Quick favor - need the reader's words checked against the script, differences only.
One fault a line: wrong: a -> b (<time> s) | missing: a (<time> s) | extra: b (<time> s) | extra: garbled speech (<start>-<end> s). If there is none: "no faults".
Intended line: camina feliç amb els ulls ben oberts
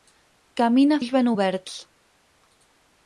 missing: feliç amb els (1.0 s)